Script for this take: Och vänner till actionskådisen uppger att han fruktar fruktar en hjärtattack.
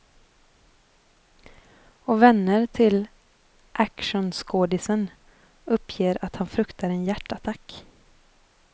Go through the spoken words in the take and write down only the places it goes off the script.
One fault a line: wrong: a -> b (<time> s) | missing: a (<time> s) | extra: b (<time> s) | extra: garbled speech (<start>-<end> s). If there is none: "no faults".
missing: fruktar (6.9 s)